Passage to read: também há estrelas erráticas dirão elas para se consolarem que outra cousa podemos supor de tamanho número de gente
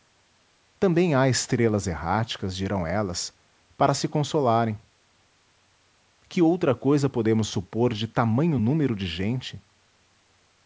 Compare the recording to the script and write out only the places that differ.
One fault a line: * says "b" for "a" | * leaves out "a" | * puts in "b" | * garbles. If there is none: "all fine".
all fine